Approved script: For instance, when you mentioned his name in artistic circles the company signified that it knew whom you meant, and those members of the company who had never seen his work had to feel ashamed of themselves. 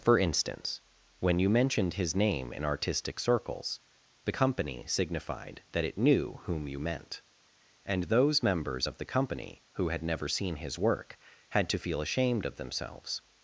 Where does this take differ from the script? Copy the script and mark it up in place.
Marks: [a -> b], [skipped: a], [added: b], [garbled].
For instance, when you mentioned his name in artistic circles the company signified that it knew whom you meant, and those members of the company who had never seen his work had to feel ashamed of themselves.